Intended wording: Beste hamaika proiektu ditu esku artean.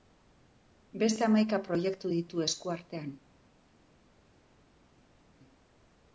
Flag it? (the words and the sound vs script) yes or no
no